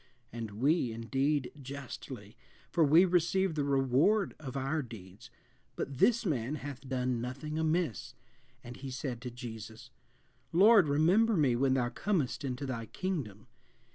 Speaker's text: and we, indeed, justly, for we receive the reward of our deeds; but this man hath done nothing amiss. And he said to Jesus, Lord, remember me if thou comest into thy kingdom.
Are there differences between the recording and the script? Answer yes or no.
yes